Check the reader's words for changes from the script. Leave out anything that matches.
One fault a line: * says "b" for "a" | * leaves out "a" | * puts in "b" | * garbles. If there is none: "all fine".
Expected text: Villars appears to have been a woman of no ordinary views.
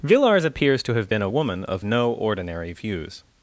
all fine